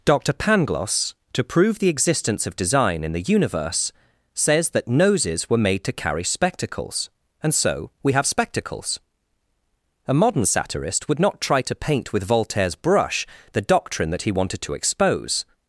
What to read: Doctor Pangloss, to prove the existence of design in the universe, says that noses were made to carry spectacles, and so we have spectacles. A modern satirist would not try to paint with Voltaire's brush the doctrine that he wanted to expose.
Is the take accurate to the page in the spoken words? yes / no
yes